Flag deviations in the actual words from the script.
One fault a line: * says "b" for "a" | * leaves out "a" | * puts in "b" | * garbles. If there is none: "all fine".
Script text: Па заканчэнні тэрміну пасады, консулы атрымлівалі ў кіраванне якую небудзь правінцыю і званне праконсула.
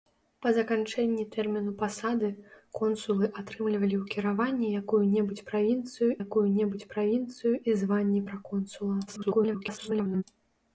* puts in "якую небудзь правінцыю"
* garbles